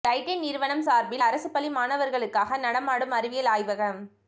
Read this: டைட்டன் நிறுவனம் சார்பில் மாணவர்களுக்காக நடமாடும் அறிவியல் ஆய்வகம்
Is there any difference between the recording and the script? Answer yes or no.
yes